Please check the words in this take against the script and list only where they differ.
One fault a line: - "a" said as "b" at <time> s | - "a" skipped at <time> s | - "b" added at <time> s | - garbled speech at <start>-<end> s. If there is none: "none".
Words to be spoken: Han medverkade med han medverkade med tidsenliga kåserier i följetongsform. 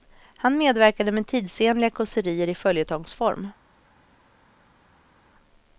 - "han medverkade med" skipped at 1.3 s